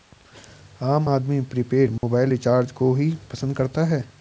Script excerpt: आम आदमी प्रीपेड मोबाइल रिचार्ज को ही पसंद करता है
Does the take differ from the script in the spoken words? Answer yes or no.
no